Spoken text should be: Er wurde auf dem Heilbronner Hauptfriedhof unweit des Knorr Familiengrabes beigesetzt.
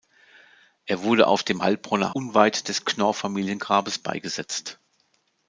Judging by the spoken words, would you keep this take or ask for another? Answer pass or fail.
fail